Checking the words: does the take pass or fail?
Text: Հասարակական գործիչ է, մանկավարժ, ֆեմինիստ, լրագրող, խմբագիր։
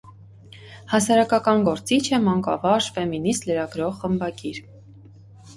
pass